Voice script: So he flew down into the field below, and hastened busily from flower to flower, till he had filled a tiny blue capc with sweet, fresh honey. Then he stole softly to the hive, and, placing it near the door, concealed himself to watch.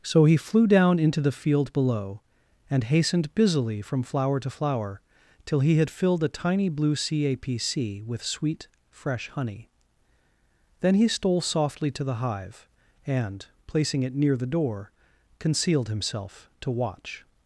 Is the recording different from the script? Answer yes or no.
no